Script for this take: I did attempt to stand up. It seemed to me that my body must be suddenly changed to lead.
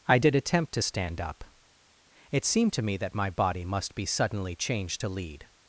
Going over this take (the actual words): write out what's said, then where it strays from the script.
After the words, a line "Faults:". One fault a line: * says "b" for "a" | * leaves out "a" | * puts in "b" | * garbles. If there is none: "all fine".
I did attempt to stand up. It seemed to me that my body must be suddenly changed to lead.
Faults:
all fine